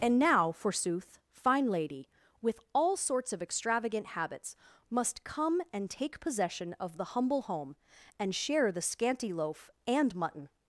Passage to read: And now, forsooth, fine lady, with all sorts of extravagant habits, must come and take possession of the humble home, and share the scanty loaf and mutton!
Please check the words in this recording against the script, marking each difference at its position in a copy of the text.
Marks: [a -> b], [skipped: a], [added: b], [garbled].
And now, forsooth, fine lady, with all sorts of extravagant habits, must come and take possession of the humble home, and share the scanty loaf and mutton!